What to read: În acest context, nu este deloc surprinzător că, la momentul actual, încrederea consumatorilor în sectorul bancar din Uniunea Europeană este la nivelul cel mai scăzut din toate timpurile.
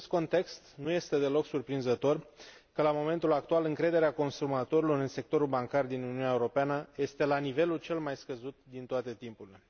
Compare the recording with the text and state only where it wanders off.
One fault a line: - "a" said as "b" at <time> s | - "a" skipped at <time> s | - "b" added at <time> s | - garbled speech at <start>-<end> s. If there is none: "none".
none